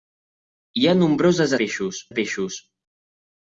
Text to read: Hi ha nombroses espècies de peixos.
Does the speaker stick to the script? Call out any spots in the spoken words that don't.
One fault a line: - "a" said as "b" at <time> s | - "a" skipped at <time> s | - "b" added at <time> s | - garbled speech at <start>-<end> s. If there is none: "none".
- "espècies" said as "peixos" at 1.6 s